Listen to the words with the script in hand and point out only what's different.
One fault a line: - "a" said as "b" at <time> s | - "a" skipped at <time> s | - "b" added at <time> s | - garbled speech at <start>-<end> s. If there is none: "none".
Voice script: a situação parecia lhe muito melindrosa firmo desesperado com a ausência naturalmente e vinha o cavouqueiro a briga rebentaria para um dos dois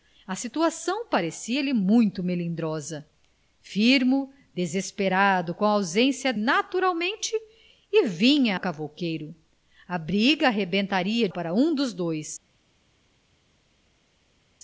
none